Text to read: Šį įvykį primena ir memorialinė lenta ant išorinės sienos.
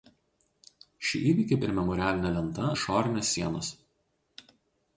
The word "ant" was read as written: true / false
false